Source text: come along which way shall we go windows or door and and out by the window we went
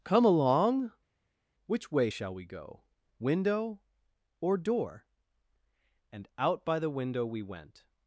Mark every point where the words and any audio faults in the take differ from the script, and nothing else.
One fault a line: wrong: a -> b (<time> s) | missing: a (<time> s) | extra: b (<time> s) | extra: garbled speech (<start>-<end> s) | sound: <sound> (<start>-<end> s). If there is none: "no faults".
wrong: windows -> window (3.2 s)
missing: and (6.3 s)